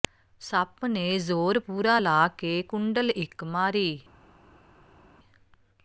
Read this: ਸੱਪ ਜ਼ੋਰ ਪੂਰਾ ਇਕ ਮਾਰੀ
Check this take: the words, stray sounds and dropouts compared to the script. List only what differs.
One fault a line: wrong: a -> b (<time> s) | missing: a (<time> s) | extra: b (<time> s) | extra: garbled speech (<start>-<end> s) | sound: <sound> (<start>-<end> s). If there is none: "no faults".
extra: ਨੇ (0.8 s)
extra: ਲਾ ਕੇ ਕੁੰਡਲ (2.0 s)